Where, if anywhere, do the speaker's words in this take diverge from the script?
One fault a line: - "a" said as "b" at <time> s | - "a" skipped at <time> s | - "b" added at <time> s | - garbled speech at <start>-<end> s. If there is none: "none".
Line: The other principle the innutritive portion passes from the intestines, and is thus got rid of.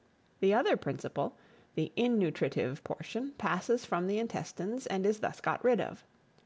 none